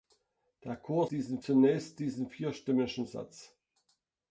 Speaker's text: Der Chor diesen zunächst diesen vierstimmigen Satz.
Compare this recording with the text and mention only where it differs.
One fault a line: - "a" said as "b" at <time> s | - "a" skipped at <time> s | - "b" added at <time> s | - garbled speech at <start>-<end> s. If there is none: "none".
none